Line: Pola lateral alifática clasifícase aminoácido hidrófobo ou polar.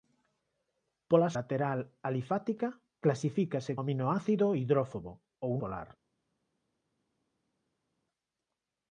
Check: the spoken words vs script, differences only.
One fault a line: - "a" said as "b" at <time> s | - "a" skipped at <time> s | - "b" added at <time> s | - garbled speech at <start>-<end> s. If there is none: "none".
none